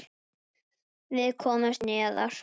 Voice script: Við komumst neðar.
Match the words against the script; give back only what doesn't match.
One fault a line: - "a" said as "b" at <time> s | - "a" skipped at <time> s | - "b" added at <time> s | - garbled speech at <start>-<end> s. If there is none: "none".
none